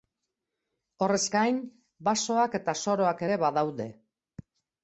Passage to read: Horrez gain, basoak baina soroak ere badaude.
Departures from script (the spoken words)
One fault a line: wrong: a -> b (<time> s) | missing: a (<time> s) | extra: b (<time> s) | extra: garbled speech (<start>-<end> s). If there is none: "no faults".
wrong: baina -> eta (2.6 s)